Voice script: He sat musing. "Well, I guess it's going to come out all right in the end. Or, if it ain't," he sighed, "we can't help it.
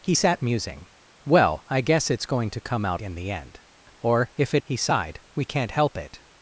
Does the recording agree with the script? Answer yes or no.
no